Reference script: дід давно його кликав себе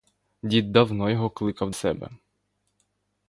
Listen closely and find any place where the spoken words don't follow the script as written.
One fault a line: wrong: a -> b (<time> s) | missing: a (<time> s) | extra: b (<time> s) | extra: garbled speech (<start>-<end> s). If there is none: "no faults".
no faults